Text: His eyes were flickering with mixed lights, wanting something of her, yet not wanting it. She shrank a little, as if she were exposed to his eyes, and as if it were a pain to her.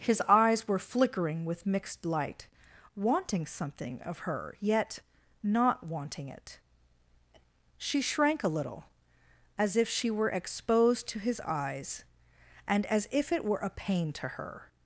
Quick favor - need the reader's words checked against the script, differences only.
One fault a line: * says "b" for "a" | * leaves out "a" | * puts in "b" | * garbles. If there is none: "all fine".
* says "light" for "lights"